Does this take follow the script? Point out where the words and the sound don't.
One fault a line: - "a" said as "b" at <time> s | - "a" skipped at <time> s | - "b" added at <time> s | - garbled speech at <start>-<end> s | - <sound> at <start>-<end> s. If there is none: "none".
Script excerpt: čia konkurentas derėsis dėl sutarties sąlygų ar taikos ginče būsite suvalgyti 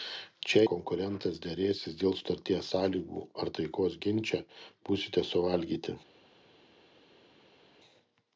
none